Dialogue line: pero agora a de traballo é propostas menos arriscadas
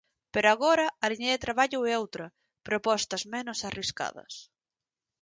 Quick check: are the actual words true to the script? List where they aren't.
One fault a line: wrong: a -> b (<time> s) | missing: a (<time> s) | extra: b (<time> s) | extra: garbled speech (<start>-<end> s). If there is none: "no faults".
extra: liña (1.1 s)
extra: outra (2.0 s)